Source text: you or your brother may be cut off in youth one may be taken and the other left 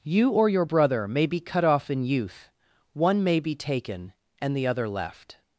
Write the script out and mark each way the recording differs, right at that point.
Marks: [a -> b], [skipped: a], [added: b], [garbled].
you or your brother may be cut off in youth one may be taken and the other left